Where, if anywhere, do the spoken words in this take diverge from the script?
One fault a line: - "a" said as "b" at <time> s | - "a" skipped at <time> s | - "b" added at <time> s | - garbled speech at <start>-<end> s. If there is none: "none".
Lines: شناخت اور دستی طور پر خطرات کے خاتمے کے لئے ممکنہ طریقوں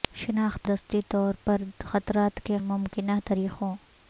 - "اور" skipped at 0.7 s
- "خاتمے کے لئے" skipped at 2.6 s